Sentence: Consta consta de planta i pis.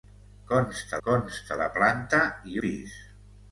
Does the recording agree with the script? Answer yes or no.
yes